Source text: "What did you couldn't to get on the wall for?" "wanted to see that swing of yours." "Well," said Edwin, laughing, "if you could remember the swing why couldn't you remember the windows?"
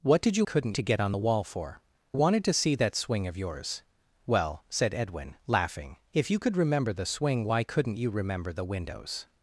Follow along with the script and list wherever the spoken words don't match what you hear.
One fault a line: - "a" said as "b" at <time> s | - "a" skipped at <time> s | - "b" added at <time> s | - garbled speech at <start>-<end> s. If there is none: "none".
none